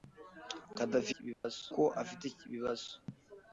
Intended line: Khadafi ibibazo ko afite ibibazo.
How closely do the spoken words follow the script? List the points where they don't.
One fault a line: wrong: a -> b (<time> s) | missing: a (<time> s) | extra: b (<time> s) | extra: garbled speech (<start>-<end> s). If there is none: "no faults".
no faults